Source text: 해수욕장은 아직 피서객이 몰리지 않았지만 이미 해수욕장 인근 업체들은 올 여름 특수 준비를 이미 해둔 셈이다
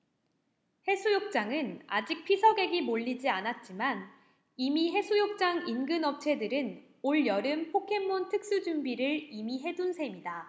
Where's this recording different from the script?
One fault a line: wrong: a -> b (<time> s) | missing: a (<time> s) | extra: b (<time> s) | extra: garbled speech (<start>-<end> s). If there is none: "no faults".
extra: 포켓몬 (7.7 s)